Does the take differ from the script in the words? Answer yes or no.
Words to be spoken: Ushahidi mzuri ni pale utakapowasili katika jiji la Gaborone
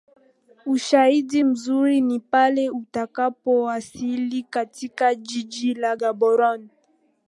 no